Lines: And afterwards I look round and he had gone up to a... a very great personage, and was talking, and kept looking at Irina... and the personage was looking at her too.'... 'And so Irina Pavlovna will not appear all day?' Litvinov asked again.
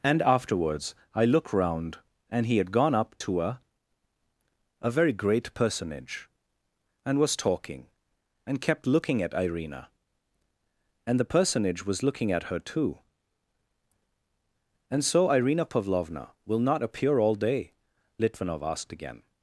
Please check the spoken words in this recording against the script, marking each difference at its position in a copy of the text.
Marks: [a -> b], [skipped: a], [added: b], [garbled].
And afterwards I look round and he had gone up to a... a very great personage, and was talking, and kept looking at Irina... and the personage was looking at her too.'... 'And so Irina Pavlovna will not appear all day?' Litvinov asked again.